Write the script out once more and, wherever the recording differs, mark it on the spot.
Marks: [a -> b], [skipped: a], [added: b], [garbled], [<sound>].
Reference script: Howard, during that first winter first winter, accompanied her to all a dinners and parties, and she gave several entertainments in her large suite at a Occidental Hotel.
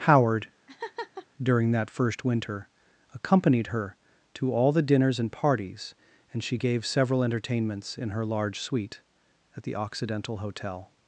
Howard, [laugh] during that first winter [skipped: first winter,] accompanied her to all [a -> the] dinners and parties, and she gave several entertainments in her large suite at [a -> the] Occidental Hotel.